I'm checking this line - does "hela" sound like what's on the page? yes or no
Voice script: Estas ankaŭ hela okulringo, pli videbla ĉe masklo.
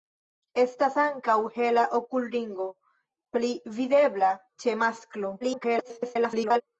yes